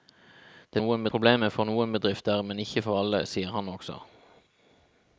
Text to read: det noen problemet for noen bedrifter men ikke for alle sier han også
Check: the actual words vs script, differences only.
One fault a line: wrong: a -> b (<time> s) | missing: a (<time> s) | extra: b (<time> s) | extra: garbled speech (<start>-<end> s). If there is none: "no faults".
no faults